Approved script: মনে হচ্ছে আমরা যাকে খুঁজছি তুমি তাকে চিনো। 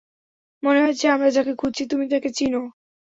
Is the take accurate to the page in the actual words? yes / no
yes